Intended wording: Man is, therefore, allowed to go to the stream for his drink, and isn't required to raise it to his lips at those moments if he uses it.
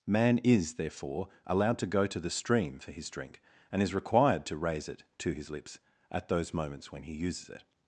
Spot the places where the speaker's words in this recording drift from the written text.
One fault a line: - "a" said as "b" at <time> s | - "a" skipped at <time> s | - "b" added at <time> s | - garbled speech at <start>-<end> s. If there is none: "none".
- "isn't" said as "is" at 3.8 s
- "if" said as "when" at 6.9 s